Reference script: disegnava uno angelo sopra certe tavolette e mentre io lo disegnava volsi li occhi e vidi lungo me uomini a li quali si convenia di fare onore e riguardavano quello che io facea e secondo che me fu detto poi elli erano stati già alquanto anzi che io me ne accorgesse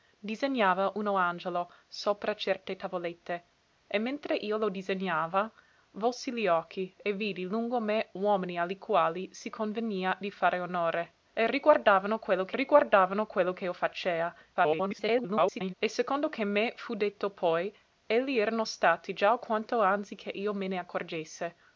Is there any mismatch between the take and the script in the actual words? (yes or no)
yes